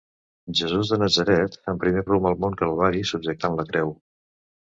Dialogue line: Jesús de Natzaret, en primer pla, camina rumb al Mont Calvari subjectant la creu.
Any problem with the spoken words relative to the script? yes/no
yes